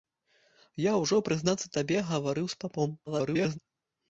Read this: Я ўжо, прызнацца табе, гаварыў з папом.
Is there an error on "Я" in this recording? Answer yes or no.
no